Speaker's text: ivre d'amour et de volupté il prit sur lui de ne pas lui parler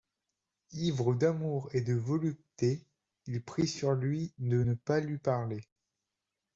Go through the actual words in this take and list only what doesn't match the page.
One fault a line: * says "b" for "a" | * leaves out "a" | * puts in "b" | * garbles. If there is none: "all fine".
all fine